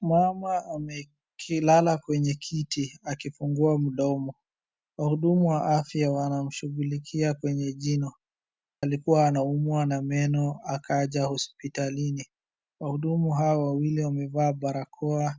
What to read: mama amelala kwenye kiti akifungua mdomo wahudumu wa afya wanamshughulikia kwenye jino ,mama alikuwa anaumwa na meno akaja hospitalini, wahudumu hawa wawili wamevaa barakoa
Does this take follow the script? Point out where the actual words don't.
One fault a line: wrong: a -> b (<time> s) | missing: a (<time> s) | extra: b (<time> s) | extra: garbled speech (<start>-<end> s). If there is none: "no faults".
missing: mama (8.1 s)